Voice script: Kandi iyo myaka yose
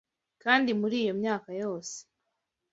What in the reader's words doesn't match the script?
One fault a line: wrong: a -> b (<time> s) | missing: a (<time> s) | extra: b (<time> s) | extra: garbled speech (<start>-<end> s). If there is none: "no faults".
extra: muri (0.8 s)